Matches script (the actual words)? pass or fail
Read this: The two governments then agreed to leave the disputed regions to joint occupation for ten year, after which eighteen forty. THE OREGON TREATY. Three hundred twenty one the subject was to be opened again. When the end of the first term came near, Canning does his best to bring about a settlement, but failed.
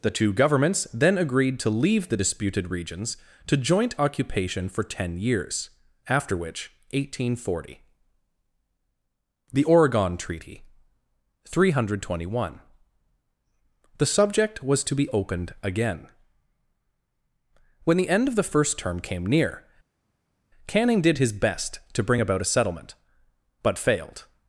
fail